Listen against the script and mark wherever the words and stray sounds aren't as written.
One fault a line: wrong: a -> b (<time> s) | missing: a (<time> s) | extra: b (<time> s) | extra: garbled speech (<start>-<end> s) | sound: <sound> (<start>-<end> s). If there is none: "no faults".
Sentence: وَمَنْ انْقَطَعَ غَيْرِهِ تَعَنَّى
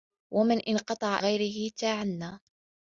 no faults